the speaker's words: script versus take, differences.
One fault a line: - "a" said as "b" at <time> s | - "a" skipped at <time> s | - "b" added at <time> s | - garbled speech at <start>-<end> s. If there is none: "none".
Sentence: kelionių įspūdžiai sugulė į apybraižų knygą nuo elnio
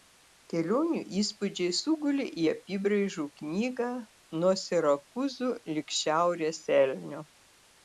- "sirakūzų lig šiaurės" added at 4.7 s